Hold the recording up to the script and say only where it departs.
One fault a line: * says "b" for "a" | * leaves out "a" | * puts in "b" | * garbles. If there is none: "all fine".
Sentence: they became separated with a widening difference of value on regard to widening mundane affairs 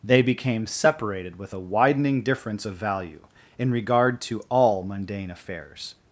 * says "in" for "on"
* says "all" for "widening"